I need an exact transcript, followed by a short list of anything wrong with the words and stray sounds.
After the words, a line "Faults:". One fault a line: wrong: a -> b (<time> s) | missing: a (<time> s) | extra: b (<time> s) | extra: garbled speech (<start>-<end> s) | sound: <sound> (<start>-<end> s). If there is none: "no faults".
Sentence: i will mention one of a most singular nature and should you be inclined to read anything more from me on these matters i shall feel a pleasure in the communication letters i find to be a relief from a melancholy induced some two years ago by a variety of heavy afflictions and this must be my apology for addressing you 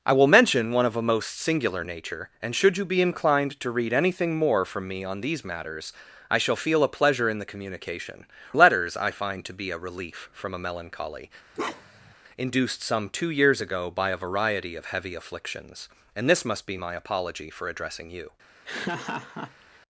i will mention one of a most singular nature and should you be inclined to read anything more from me on these matters i shall feel a pleasure in the communication letters i find to be a relief from a melancholy induced some two years ago by a variety of heavy afflictions and this must be my apology for addressing you
Faults:
sound: bark (11.5-12.1 s)
sound: laugh (18.6-19.8 s)